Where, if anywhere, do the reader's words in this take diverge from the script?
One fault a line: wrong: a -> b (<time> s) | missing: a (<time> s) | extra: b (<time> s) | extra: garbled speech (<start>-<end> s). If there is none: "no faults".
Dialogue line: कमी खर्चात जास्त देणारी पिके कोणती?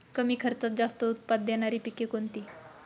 extra: उत्पाद (1.0 s)